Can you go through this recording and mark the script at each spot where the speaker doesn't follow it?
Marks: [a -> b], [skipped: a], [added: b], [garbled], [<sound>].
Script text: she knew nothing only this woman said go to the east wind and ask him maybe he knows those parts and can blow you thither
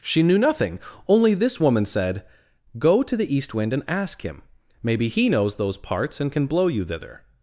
she knew nothing only this woman said go to the east wind and ask him maybe he knows those parts and can blow you thither